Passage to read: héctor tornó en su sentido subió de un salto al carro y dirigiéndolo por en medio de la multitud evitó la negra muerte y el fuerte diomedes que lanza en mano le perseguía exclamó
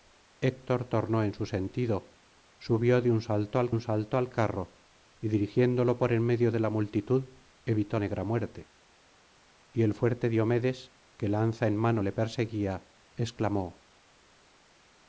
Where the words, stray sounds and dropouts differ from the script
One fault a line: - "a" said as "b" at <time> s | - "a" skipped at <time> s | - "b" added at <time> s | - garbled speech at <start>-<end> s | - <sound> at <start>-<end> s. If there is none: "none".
- "un salto al" added at 3.7 s
- "la" skipped at 8.0 s